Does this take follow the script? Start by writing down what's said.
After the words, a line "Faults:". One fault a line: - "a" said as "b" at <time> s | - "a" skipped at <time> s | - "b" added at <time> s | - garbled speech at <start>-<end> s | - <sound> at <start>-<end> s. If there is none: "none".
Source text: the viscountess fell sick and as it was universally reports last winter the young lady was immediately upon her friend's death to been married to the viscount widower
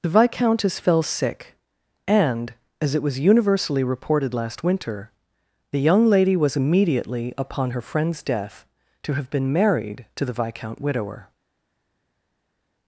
the viscountess fell sick and as it was universally reported last winter the young lady was immediately upon her friend's death to have been married to the viscount widower
Faults:
- "reports" said as "reported" at 3.8 s
- "have" added at 9.1 s